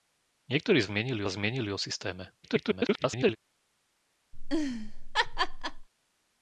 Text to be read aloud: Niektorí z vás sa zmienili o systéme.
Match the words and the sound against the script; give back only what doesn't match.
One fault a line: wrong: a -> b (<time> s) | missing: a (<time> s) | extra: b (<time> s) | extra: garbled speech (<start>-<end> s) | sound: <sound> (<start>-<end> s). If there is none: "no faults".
wrong: vás -> zmienili (0.8 s)
extra: garbled speech (2.4-3.4 s)
sound: laugh (4.3-5.9 s)